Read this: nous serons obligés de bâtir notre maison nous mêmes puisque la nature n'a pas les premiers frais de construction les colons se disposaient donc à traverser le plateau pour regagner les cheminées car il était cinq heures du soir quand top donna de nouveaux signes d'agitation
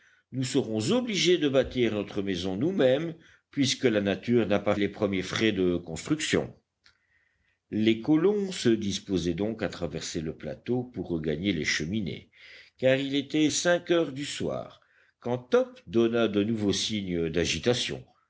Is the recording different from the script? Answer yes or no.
no